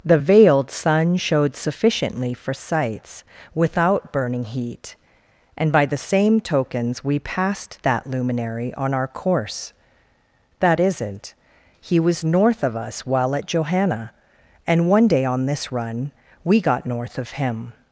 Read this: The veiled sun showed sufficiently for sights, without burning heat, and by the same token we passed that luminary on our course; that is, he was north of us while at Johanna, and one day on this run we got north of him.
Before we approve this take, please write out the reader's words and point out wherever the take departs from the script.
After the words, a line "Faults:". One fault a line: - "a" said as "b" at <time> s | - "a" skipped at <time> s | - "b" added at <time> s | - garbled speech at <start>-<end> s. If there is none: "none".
The veiled sun showed sufficiently for sights, without burning heat, and by the same tokens we passed that luminary on our course; that isn't, he was north of us while at Johanna, and one day on this run we got north of him.
Faults:
- "token" said as "tokens" at 6.4 s
- "is" said as "isn't" at 10.8 s